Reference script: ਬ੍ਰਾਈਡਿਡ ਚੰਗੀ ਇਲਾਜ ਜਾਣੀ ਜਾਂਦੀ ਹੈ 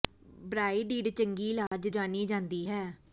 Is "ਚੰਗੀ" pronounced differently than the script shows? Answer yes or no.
no